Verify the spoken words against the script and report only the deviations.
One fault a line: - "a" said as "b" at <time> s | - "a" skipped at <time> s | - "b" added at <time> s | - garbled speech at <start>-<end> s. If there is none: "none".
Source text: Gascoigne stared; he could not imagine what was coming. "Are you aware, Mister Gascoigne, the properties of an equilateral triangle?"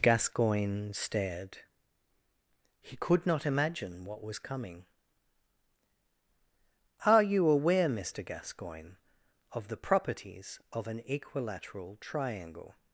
- "of" added at 9.5 s